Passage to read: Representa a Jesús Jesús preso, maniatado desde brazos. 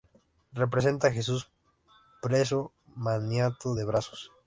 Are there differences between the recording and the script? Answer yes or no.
yes